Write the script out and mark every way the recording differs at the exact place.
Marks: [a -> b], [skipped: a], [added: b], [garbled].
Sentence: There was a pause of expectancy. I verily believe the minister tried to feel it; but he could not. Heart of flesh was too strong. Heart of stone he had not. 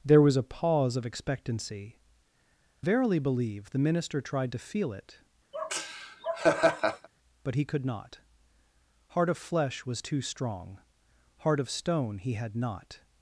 There was a pause of expectancy. [skipped: I] verily believe the minister tried to feel it; but he could not. Heart of flesh was too strong. Heart of stone he had not.